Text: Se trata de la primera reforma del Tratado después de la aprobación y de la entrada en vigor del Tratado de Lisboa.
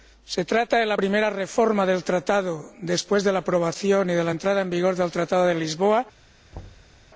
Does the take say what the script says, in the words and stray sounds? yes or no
no